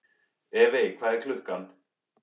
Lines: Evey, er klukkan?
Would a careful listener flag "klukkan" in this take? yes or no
no